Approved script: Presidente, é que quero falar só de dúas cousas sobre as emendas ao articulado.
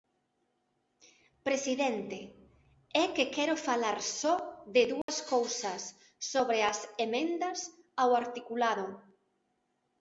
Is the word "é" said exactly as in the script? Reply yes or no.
yes